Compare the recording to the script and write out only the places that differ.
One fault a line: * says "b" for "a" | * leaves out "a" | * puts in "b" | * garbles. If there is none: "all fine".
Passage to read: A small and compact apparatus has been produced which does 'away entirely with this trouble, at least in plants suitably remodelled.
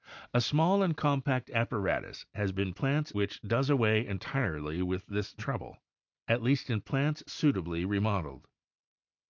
* says "plants" for "produced"